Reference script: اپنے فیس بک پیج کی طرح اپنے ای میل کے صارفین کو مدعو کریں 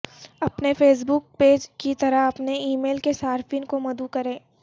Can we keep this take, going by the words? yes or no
yes